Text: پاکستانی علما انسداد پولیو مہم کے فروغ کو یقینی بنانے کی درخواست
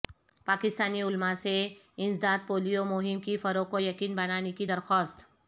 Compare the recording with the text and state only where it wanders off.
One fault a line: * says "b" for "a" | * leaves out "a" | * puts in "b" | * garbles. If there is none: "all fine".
* puts in "سے"